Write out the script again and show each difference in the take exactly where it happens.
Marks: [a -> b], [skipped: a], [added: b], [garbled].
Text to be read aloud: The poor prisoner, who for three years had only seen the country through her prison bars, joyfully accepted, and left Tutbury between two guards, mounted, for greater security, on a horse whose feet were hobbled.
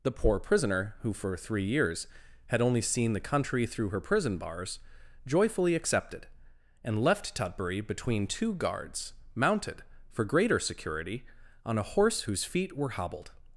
The poor prisoner, who for three years had only seen the country through her prison bars, joyfully accepted, and left Tutbury between two guards, mounted, for greater security, on a horse whose feet were hobbled.